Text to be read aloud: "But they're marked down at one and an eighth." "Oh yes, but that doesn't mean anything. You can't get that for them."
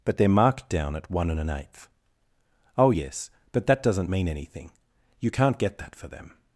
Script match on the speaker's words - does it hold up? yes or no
yes